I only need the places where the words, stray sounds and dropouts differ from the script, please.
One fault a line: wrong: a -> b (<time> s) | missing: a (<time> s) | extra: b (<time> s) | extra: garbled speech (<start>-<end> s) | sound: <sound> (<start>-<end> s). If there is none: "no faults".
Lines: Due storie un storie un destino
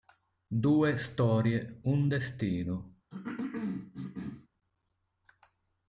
missing: storie un (2.1 s)
sound: cough (3.1-4.5 s)